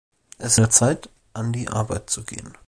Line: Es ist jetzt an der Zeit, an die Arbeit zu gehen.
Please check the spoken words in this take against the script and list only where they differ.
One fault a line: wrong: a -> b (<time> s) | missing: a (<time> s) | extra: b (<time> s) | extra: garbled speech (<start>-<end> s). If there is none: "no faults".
missing: ist jetzt an (0.6 s)